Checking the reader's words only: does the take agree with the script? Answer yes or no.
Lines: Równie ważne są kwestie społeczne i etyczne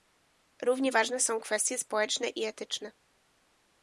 yes